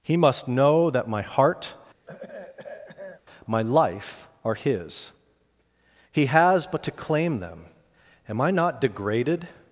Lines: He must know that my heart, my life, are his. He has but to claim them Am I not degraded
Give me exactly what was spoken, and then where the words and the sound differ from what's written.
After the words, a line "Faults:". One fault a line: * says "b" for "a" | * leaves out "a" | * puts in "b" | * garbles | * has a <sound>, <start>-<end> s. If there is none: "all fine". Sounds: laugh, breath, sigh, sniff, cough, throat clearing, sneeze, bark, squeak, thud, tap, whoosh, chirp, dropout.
He must know that my heart, my life, are his. He has but to claim them Am I not degraded
Faults:
* has a throat clearing, 2.1-3.2 s